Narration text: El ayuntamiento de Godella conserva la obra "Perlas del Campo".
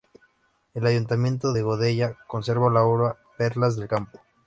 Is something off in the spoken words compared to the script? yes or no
no